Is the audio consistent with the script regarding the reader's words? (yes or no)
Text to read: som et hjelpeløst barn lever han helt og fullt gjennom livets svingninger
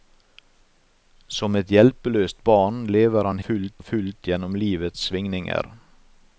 no